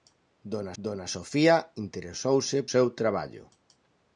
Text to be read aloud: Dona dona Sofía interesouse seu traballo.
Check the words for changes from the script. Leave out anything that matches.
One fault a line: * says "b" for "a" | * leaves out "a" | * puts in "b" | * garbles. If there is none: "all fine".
all fine